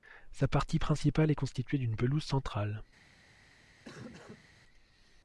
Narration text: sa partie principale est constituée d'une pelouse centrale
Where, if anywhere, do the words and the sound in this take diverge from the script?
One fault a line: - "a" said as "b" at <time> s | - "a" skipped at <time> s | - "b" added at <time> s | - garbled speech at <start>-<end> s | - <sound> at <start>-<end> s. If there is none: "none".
- cough at 3.8-4.5 s